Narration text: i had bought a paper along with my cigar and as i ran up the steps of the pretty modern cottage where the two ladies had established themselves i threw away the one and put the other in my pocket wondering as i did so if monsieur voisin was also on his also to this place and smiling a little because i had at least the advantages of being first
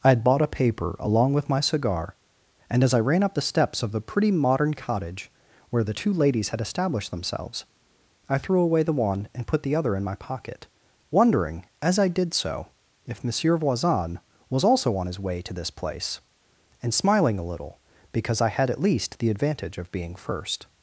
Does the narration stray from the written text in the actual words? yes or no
yes